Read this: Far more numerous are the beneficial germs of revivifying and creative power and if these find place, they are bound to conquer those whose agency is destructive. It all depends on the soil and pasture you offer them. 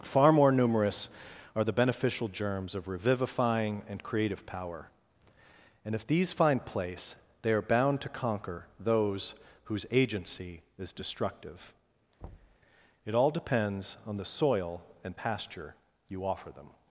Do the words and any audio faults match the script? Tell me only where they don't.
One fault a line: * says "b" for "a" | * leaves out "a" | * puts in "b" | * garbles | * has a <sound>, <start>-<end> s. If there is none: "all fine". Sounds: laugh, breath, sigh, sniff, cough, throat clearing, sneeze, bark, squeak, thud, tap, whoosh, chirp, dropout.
* has a thud, 12.2-12.6 s